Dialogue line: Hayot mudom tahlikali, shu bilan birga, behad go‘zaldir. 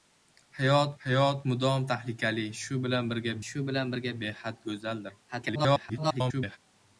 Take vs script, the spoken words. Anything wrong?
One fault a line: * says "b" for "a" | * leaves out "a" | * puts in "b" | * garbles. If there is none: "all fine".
* puts in "hayot"
* puts in "shu bilan birga"
* garbles